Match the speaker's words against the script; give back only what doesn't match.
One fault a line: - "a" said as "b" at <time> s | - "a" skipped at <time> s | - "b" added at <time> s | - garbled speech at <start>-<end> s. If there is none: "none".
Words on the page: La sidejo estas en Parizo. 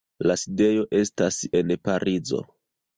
none